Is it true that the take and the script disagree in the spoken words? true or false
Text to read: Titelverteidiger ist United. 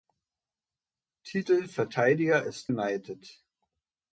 false